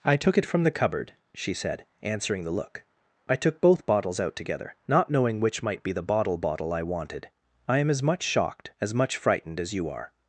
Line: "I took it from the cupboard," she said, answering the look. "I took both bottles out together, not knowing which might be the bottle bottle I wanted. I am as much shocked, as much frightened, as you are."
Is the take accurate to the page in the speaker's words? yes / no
yes